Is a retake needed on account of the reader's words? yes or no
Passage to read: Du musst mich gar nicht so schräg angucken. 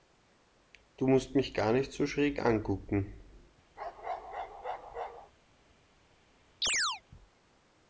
no